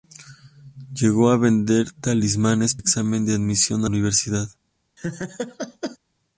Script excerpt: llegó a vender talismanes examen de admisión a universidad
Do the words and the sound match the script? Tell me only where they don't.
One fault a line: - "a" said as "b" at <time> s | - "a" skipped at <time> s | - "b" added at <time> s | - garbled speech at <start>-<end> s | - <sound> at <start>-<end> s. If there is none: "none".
- laugh at 5.0-6.0 s